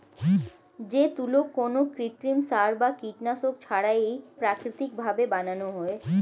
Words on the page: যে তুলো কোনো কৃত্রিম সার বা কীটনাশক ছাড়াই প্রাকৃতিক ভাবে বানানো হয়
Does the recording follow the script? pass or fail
pass